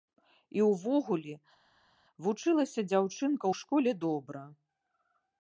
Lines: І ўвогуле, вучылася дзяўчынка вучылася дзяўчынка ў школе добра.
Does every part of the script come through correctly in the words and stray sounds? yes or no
no